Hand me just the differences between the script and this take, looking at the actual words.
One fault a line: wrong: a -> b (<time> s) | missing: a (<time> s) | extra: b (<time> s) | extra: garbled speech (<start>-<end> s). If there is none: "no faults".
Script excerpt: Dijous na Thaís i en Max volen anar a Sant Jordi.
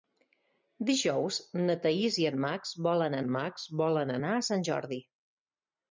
extra: en Max volen (3.2 s)